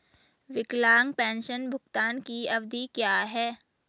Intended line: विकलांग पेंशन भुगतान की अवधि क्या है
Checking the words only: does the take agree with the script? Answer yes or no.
yes